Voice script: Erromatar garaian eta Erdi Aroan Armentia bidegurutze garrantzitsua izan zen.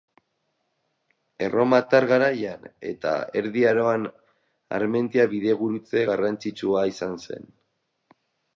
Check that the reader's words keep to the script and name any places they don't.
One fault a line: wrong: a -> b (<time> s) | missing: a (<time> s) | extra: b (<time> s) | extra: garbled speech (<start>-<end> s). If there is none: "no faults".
no faults